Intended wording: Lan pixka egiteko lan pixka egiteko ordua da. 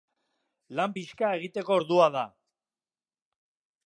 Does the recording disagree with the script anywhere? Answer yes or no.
yes